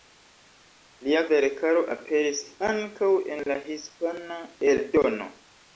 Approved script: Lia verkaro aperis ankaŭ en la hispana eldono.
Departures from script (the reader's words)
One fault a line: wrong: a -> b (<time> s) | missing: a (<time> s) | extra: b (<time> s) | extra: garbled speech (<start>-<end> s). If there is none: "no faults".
no faults